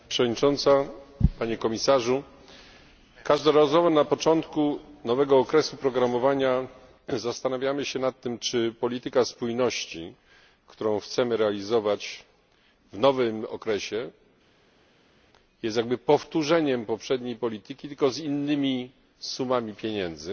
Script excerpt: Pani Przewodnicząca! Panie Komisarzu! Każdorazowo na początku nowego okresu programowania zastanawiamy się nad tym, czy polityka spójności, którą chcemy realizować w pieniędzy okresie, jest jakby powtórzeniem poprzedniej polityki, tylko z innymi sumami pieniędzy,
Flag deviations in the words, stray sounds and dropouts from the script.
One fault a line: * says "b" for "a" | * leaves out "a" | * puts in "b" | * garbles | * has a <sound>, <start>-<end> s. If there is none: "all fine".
* says "nowym" for "pieniędzy"